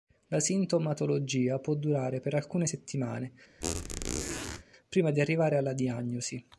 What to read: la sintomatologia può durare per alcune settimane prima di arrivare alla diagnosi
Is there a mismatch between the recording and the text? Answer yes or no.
no